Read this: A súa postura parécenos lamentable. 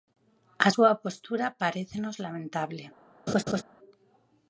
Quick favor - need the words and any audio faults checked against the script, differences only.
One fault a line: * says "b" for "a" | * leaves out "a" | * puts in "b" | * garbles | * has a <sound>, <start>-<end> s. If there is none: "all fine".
* has a laugh, 3.3-3.6 s